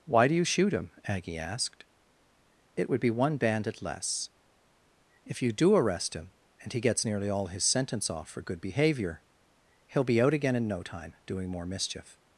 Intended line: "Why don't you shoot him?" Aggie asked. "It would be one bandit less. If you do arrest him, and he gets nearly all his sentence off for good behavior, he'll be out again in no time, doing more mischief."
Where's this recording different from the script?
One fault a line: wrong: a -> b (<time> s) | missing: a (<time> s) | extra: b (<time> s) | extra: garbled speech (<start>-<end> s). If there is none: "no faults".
wrong: don't -> do (0.3 s)